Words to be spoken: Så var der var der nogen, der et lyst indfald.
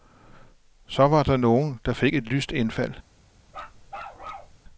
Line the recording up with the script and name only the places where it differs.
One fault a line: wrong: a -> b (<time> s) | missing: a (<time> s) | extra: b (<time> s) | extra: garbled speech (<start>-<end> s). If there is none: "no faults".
wrong: var -> nogen (1.4 s)
wrong: nogen der -> fik (1.9 s)